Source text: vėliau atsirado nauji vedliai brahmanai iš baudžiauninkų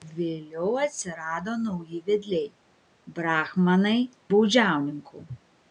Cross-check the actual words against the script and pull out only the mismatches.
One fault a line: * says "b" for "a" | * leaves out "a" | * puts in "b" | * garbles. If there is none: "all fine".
* leaves out "iš"